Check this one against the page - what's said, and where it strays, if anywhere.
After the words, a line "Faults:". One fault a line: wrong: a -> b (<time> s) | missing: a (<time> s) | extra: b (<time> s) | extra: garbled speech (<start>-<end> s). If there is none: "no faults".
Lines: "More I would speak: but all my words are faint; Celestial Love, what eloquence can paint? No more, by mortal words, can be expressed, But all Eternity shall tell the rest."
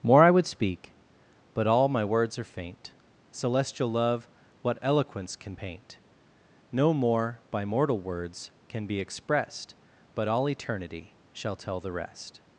"More I would speak: but all my words are faint; Celestial Love, what eloquence can paint? No more, by mortal words, can be expressed, But all Eternity shall tell the rest."
Faults:
no faults